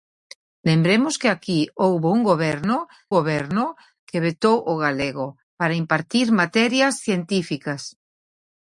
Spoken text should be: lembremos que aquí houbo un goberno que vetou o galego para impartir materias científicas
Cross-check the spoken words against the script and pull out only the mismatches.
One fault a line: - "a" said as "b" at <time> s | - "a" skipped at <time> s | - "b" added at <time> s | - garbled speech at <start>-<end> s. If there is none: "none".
- "goberno" added at 3.2 s